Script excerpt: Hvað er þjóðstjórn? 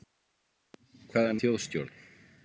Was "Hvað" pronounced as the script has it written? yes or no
yes